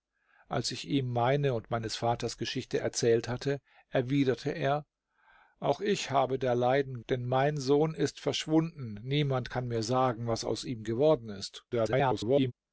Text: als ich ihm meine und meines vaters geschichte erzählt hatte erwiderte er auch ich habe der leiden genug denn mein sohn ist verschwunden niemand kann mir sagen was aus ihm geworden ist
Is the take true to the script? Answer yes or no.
no